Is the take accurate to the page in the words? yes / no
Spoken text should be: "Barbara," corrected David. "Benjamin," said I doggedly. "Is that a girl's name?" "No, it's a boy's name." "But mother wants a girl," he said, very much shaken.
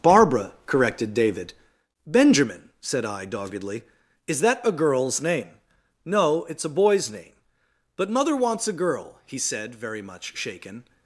yes